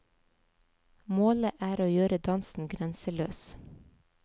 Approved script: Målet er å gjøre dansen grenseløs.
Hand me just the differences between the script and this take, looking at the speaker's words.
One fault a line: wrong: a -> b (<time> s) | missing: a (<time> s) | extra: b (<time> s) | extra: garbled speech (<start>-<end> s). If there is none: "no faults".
no faults